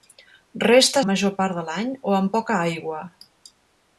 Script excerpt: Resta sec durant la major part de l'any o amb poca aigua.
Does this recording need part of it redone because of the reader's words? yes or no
yes